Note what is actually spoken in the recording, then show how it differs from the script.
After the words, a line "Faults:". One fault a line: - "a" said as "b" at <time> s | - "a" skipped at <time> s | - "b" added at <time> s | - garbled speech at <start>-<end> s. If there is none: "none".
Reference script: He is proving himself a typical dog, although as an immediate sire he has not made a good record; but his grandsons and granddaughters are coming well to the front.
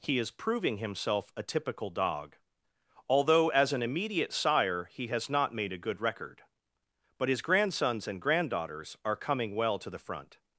He is proving himself a typical dog, although as an immediate sire he has not made a good record; but his grandsons and granddaughters are coming well to the front.
Faults:
none